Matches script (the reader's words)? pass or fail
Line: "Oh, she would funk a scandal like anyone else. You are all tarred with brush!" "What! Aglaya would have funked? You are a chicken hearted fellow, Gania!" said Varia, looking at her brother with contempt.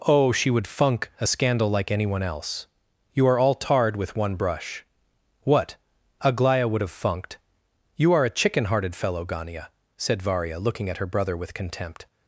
fail